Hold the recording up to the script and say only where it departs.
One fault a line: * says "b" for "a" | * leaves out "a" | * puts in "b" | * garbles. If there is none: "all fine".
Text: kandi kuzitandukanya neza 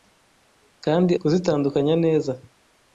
all fine